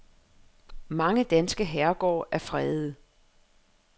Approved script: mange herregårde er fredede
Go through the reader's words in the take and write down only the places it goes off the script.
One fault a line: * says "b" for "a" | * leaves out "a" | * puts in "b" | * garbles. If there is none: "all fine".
* puts in "danske"